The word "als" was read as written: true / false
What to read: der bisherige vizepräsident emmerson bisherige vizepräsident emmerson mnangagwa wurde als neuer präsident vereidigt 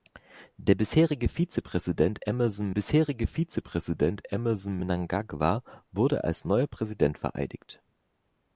true